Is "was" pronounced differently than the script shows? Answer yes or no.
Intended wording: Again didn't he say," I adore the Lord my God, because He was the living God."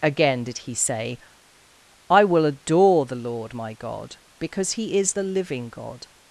yes